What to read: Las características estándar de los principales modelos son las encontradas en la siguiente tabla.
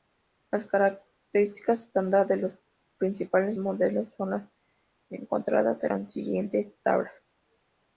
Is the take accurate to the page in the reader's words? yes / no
yes